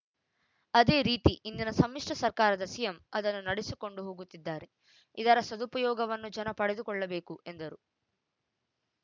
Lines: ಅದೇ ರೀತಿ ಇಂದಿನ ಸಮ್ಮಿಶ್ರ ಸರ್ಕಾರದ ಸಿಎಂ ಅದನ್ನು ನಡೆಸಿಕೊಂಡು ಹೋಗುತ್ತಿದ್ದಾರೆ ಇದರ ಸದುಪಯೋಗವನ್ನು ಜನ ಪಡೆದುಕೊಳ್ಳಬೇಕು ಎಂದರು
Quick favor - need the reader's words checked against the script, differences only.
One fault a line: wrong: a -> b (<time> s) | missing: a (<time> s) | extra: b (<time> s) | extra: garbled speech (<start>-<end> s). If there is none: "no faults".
no faults